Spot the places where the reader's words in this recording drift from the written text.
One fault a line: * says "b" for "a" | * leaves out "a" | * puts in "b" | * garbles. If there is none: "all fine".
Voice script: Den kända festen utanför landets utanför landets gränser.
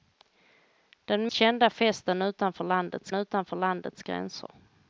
all fine